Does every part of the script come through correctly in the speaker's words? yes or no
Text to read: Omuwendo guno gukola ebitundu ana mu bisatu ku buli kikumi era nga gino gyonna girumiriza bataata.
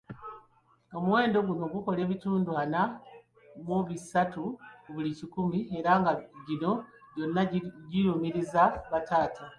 yes